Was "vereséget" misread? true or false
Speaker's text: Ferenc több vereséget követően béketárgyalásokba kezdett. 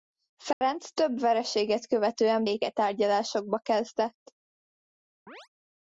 false